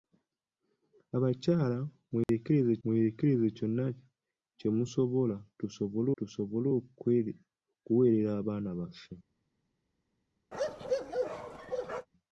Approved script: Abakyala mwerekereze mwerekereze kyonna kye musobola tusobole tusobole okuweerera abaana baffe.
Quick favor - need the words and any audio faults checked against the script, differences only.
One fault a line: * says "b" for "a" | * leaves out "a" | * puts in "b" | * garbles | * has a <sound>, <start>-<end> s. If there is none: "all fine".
* has a dropout, 2.2-2.3 s
* has a bark, 10.5-12.1 s